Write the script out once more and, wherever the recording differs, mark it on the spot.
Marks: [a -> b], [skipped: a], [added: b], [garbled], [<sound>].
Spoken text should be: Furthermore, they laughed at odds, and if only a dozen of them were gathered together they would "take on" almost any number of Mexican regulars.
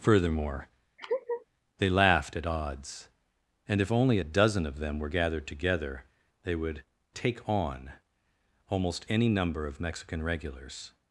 Furthermore, [laugh] they laughed at odds, and if only a dozen of them were gathered together they would "take on" almost any number of Mexican regulars.